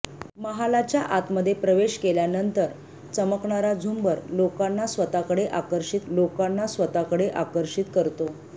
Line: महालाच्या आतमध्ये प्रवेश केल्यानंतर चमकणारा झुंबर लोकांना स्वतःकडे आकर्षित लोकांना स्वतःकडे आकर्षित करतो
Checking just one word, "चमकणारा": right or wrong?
right